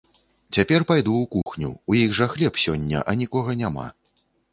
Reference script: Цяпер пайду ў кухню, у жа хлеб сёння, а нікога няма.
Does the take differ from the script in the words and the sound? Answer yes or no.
yes